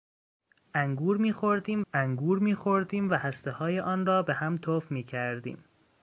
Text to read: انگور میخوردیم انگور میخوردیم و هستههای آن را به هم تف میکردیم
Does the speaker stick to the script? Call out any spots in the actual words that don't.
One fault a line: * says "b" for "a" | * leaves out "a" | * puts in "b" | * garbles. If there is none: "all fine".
all fine